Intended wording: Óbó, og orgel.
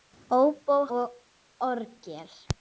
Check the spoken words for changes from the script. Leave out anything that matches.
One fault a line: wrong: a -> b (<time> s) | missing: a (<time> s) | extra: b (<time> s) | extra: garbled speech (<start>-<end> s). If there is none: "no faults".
no faults